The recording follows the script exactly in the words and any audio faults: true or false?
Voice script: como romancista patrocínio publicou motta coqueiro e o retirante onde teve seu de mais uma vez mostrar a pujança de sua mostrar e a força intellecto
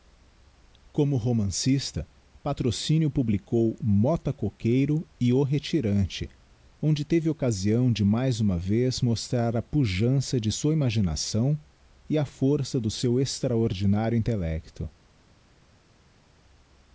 false